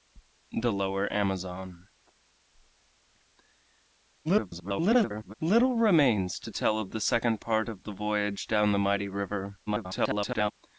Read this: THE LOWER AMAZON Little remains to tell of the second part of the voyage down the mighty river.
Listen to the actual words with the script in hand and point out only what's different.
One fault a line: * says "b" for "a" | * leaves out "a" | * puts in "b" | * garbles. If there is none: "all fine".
* garbles
* garbles